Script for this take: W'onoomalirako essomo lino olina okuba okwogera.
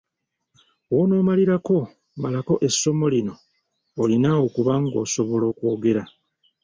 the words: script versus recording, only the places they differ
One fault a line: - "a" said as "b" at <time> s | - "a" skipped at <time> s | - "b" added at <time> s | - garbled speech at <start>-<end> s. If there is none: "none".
- "malako" added at 2.2 s
- "ng'osobola" added at 4.8 s